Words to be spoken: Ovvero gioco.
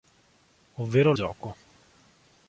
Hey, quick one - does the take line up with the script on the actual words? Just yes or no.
yes